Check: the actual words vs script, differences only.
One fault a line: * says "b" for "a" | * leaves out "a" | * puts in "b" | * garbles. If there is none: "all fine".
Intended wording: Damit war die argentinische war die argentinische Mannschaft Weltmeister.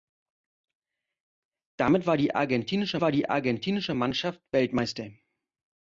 all fine